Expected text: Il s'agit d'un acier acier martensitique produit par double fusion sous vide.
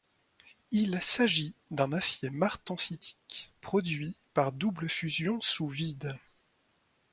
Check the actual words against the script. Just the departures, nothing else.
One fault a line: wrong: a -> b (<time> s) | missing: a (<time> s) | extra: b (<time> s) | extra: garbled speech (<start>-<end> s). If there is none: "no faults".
missing: acier (2.3 s)